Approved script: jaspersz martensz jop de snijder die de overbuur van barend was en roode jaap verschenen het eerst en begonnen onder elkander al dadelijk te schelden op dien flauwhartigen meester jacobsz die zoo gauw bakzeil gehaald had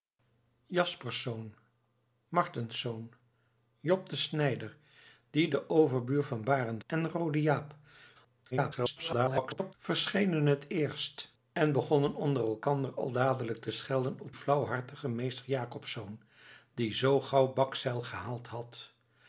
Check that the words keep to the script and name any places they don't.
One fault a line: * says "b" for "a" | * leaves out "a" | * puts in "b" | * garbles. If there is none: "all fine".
* leaves out "was"
* garbles
* leaves out "dien"